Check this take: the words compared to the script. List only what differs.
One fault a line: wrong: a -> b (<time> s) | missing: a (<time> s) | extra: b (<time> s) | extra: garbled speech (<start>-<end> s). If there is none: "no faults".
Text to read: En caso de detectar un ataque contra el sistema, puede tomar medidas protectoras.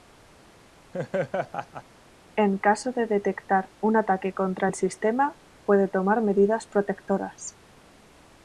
no faults